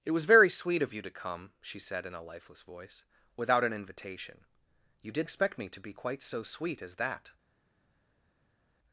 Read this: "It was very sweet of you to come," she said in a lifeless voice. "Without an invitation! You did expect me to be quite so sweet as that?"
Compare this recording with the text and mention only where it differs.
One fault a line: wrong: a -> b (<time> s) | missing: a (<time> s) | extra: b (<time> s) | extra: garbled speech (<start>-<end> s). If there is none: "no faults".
no faults